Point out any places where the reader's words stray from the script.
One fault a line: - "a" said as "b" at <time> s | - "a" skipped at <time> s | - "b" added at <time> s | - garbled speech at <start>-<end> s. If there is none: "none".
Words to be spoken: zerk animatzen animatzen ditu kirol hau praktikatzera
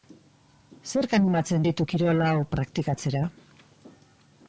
- "animatzen" skipped at 1.7 s